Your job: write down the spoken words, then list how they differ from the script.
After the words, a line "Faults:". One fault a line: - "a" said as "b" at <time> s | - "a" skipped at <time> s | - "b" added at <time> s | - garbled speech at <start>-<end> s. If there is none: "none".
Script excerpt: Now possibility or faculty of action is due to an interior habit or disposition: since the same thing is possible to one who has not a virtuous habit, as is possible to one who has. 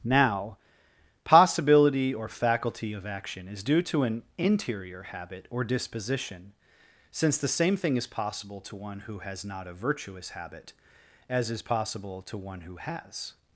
Now possibility or faculty of action is due to an interior habit or disposition: since the same thing is possible to one who has not a virtuous habit, as is possible to one who has.
Faults:
none